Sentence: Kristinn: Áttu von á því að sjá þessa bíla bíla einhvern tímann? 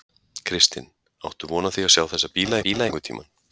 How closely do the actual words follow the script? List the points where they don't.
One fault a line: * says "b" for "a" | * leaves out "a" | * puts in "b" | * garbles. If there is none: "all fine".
all fine